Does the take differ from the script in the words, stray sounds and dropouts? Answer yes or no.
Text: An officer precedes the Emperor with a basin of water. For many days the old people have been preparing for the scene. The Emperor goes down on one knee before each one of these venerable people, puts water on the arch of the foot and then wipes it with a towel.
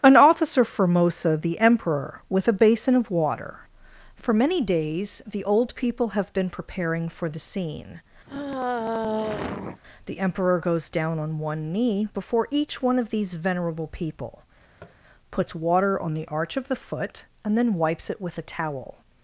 yes